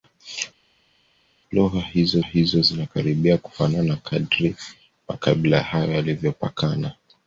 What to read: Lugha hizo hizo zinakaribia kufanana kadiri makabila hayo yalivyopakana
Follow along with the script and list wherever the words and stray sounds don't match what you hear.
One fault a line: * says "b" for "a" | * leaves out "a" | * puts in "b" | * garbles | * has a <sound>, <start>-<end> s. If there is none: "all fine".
all fine